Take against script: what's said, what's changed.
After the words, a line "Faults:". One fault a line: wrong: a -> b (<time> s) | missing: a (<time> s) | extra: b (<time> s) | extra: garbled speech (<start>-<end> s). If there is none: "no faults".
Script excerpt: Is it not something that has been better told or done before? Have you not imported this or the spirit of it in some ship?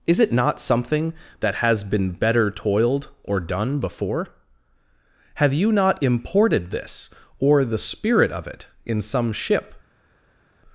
Is it not something that has been better toiled or done before? Have you not imported this or the spirit of it in some ship?
Faults:
wrong: told -> toiled (2.5 s)